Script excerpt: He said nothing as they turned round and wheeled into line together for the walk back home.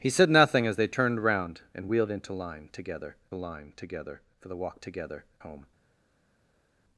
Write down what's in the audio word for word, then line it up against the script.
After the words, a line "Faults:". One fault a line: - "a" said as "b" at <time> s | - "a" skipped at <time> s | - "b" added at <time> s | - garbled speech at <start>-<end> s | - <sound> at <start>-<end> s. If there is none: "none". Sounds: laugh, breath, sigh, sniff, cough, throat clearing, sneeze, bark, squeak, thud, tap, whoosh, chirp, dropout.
He said nothing as they turned round and wheeled into line together line together for the walk together home.
Faults:
- "line together" added at 3.3 s
- "back" said as "together" at 4.8 s